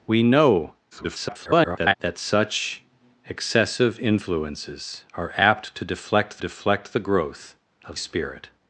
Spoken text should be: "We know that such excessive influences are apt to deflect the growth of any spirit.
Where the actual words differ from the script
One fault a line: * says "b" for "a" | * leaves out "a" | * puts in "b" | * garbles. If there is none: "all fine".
* garbles
* puts in "deflect"
* leaves out "any"